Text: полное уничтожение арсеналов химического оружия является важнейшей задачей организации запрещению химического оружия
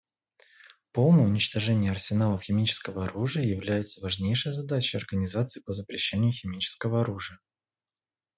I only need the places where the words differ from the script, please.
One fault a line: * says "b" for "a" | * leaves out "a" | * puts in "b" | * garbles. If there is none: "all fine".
* puts in "по"